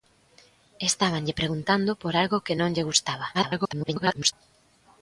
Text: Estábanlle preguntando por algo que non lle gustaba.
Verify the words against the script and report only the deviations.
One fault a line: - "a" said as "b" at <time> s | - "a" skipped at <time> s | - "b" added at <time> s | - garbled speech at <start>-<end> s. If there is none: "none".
- garbled speech at 3.3-4.3 s